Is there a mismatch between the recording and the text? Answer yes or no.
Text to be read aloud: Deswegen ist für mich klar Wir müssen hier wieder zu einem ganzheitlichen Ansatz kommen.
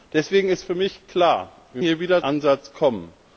yes